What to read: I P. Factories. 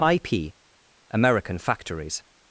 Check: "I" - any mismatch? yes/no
no